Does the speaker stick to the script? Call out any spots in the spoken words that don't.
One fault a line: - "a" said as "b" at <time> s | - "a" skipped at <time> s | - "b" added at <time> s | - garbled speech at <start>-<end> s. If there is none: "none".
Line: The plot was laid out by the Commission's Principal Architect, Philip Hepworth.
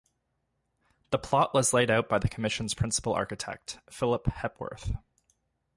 none